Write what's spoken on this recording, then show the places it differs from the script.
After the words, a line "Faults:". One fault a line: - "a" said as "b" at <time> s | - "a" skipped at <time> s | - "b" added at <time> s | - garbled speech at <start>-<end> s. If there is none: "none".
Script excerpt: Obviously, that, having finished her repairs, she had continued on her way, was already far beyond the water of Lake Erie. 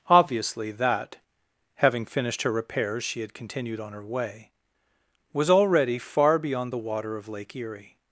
Obviously, that, having finished her repairs, she had continued on her way, was already far beyond the water of Lake Erie.
Faults:
none